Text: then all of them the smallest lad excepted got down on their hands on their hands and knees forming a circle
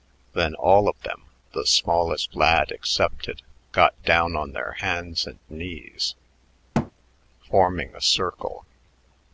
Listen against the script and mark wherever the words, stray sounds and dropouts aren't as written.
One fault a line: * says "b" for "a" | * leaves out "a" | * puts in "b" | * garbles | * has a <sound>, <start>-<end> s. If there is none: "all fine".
* leaves out "on their hands"
* has a thud, 6.7-6.9 s